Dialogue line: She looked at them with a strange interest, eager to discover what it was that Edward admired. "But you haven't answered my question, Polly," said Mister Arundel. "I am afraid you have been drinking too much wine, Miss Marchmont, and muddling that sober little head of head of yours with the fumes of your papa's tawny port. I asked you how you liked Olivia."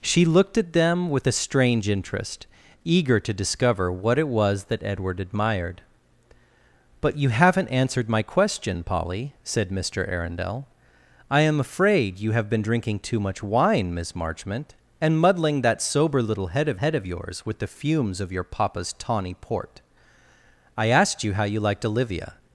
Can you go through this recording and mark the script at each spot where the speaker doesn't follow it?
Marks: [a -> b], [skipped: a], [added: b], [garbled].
She looked at them with a strange interest, eager to discover what it was that Edward admired. "But you haven't answered my question, Polly," said Mister Arundel. "I am afraid you have been drinking too much wine, Miss Marchmont, and muddling that sober little head of head of yours with the fumes of your papa's tawny port. I asked you how you liked Olivia."